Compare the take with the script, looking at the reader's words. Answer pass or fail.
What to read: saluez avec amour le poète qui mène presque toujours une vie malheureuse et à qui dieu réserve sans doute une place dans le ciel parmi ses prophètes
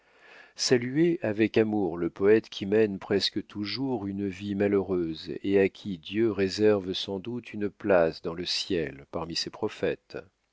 pass